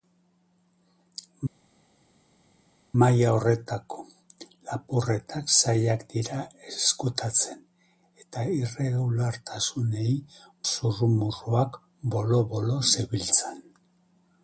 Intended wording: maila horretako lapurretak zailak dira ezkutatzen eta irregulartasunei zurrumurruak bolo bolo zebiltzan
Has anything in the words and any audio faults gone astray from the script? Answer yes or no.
no